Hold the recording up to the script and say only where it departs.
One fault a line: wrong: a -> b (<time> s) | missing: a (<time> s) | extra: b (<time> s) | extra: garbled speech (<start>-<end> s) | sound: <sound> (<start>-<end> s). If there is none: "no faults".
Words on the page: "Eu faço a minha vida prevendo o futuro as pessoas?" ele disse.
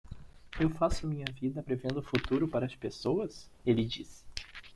extra: para (2.5 s)